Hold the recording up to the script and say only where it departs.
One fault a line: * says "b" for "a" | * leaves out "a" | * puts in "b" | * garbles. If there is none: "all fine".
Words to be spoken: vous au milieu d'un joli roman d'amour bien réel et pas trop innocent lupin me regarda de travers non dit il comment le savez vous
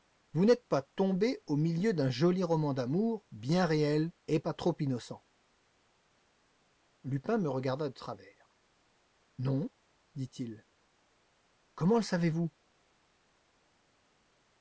* puts in "n'êtes pas tombé"